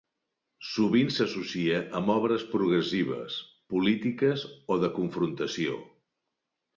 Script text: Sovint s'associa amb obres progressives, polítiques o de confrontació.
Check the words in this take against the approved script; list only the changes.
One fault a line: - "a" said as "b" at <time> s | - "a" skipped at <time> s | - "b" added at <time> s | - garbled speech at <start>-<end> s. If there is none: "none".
none